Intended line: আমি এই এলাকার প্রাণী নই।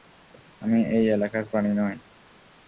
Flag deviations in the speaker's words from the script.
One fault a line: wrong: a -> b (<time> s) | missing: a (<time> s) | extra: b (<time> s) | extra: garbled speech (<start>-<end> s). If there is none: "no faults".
no faults